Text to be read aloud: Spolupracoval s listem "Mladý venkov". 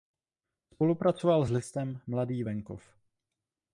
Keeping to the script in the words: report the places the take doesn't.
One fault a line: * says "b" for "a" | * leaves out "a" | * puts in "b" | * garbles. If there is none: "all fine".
all fine